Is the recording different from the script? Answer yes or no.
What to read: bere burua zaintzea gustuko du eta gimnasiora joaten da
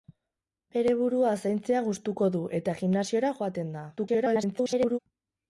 yes